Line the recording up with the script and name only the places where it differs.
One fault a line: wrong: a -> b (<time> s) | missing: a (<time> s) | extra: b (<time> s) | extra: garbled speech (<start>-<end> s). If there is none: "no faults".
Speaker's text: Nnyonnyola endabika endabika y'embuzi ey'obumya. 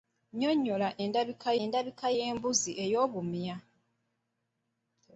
no faults